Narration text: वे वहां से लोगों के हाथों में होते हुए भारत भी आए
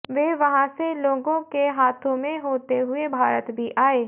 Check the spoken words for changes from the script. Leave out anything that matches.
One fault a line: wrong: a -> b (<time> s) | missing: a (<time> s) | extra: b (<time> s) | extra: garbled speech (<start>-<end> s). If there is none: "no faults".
no faults